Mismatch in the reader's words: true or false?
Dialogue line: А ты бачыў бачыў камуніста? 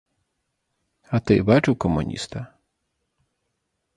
true